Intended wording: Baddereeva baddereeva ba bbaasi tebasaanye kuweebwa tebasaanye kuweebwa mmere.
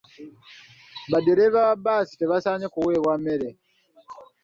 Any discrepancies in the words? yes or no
yes